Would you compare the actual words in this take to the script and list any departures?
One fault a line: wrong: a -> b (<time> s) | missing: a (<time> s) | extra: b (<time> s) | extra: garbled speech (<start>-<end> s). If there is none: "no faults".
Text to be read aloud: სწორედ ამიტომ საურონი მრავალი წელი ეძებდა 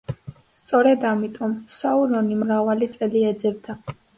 no faults